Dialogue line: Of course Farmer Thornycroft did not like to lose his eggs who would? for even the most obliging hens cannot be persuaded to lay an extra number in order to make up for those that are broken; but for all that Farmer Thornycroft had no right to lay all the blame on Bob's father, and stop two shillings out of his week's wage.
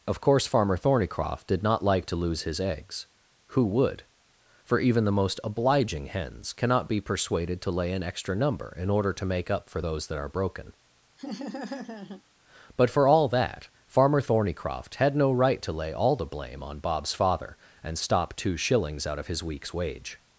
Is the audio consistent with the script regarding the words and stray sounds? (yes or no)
no